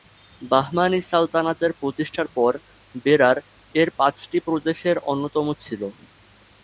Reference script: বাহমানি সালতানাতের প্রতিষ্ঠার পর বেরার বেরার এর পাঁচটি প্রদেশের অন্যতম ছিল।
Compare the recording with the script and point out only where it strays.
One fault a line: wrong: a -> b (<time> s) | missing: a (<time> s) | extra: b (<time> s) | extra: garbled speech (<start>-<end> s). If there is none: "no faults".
missing: বেরার (3.4 s)